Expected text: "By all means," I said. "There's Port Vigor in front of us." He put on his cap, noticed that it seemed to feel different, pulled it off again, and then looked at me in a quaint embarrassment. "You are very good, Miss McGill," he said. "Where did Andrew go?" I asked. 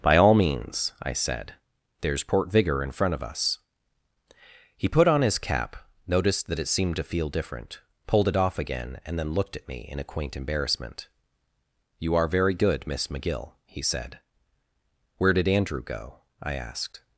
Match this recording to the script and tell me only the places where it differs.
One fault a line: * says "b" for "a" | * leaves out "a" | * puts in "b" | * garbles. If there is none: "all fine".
all fine